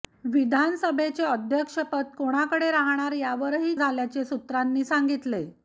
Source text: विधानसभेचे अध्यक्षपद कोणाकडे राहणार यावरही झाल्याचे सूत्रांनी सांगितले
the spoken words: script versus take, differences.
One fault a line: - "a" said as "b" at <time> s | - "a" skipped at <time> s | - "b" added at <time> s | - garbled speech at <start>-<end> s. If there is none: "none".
none